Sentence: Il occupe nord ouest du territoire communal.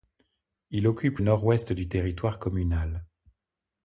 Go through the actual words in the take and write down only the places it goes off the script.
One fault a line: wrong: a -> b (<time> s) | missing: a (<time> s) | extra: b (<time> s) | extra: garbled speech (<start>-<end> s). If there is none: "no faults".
no faults